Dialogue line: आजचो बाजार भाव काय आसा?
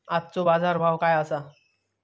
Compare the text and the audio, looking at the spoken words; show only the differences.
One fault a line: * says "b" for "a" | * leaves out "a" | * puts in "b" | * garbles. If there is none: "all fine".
all fine